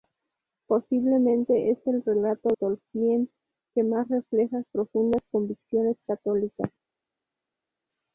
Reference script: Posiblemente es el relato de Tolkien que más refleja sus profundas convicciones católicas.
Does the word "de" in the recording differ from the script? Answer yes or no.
yes